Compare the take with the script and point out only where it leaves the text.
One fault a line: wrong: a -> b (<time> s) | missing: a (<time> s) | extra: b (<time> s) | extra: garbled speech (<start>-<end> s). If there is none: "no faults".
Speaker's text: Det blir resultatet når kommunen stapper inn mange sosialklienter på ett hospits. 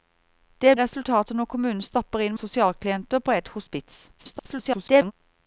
missing: blir (0.8 s)
missing: mange (2.4 s)
extra: garbled speech (4.2-5.1 s)